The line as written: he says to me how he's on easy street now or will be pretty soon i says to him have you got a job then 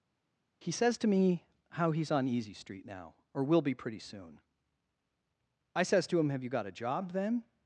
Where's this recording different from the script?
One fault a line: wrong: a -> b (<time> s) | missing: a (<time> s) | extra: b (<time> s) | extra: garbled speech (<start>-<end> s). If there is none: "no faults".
no faults